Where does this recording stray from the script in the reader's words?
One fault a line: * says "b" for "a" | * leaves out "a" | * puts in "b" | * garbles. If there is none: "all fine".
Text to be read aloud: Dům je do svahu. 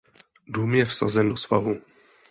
* puts in "vsazen"